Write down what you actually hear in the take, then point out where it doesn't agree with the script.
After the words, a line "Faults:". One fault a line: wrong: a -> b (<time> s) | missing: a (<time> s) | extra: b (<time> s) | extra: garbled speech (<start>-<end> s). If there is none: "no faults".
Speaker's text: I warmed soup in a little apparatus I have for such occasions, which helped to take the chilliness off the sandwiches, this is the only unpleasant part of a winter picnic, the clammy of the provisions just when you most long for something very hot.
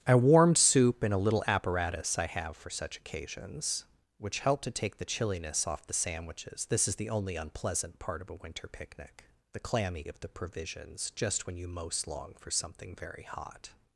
I warmed soup in a little apparatus I have for such occasions, which helped to take the chilliness off the sandwiches, this is the only unpleasant part of a winter picnic, the clammy of the provisions just when you most long for something very hot.
Faults:
no faults